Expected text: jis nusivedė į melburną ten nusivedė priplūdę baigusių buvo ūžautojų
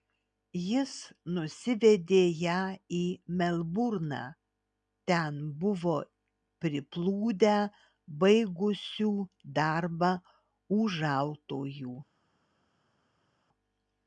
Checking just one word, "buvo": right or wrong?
wrong